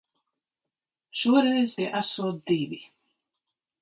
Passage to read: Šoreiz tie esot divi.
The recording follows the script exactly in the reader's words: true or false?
true